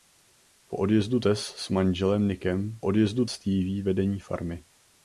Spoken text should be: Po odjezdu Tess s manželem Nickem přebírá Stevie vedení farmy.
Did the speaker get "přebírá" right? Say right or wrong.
wrong